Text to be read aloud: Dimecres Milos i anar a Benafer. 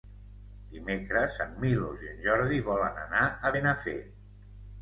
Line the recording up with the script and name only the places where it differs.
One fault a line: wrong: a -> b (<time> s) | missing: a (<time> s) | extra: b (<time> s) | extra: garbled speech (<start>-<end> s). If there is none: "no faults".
extra: en (1.4 s)
extra: en Jordi volen (2.1 s)